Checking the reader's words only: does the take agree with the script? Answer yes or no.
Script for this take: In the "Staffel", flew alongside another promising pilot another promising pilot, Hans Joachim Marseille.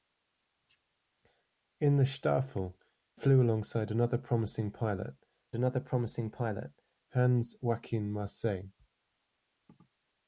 yes